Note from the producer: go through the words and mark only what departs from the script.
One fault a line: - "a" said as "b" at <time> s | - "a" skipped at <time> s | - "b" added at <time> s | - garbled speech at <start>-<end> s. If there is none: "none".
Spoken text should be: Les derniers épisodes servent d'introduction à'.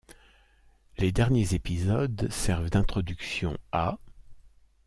none